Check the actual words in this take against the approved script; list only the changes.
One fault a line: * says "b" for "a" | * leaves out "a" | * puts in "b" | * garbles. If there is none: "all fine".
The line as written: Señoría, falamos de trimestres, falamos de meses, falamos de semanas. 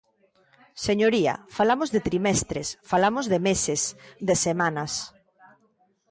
* leaves out "falamos"